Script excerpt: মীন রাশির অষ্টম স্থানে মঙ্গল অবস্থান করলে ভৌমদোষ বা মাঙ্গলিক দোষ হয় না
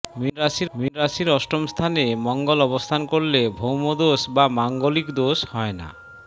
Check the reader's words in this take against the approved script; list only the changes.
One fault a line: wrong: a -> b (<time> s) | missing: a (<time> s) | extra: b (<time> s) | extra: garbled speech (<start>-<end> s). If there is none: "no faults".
extra: মীন রাশির (0.8 s)